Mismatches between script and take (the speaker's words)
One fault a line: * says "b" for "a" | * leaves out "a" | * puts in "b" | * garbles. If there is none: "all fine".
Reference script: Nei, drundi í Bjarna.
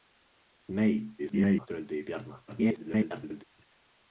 * garbles
* garbles